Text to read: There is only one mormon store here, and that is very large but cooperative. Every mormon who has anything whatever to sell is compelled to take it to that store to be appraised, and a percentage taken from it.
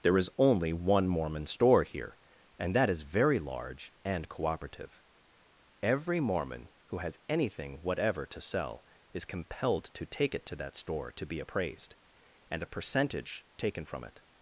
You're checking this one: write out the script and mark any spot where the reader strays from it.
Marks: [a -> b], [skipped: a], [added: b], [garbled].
There is only one mormon store here, and that is very large [but -> and] cooperative. Every mormon who has anything whatever to sell is compelled to take it to that store to be appraised, and a percentage taken from it.